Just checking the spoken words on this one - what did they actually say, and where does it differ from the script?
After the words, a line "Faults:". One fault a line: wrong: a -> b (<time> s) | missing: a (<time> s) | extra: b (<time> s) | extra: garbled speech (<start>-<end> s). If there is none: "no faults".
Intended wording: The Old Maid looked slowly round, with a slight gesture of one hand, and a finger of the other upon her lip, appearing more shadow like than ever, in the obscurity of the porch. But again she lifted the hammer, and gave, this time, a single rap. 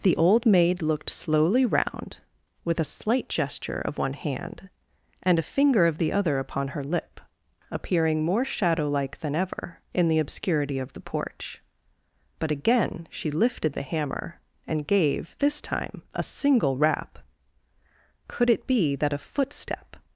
The Old Maid looked slowly round, with a slight gesture of one hand, and a finger of the other upon her lip, appearing more shadow like than ever, in the obscurity of the porch. But again she lifted the hammer, and gave, this time, a single rap. Could it be that a footstep
Faults:
extra: Could it be that a footstep (18.3 s)